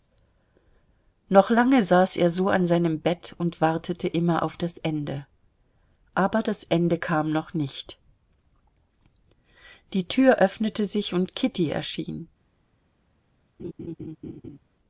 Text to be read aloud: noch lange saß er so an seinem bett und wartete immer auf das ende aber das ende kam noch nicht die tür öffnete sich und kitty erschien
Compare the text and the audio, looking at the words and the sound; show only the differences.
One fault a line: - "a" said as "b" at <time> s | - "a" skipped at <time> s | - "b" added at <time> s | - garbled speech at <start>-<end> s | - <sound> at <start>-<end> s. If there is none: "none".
- laugh at 13.6-14.6 s